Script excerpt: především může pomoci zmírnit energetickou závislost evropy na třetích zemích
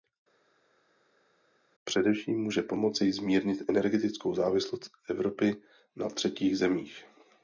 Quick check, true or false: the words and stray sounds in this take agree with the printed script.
true